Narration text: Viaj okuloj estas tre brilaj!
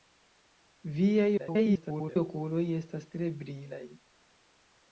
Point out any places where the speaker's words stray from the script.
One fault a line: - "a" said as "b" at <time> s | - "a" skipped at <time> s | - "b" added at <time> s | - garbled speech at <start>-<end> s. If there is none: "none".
- garbled speech at 1.4-2.2 s